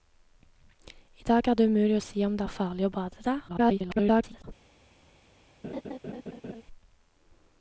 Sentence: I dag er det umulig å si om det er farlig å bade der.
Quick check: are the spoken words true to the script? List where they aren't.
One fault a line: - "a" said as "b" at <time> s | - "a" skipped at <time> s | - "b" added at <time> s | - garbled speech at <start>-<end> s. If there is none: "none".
- garbled speech at 3.5-4.4 s